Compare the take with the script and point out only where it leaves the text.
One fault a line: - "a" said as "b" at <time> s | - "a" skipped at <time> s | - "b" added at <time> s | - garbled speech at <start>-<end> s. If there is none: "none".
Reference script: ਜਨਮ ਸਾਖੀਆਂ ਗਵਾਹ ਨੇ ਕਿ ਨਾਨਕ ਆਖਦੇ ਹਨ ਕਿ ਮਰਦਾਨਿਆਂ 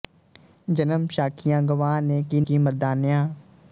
- "ਨਾਨਕ ਆਖਦੇ ਹਨ" skipped at 2.4 s